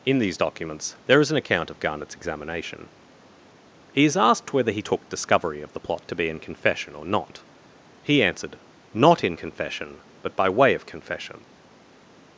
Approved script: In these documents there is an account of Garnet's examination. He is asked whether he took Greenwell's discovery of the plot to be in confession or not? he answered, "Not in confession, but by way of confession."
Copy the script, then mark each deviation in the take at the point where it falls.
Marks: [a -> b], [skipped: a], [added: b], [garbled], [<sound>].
In these documents there is an account of Garnet's examination. He is asked whether he took [skipped: Greenwell's] discovery of the plot to be in confession or not? he answered, "Not in confession, but by way of confession."